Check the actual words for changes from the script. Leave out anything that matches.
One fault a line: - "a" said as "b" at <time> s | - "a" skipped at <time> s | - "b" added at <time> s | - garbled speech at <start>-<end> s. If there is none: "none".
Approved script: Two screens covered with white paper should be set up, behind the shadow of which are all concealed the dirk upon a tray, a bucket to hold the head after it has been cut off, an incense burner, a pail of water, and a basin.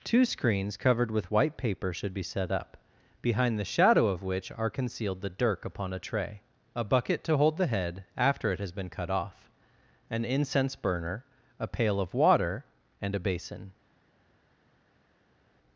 - "all" skipped at 4.7 s